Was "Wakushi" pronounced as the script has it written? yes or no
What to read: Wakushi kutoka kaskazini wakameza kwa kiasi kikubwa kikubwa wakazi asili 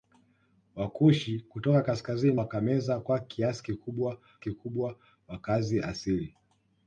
yes